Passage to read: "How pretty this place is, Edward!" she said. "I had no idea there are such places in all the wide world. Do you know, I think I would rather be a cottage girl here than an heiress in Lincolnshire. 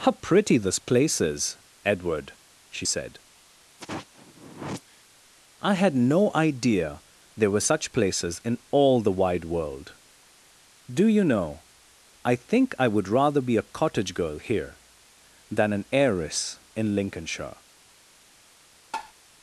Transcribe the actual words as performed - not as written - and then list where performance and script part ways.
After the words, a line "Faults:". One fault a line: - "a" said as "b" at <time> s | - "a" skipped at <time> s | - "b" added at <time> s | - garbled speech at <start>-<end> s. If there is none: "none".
"How pretty this place is, Edward!" she said. "I had no idea there were such places in all the wide world. Do you know, I think I would rather be a cottage girl here than an heiress in Lincolnshire.
Faults:
- "are" said as "were" at 7.5 s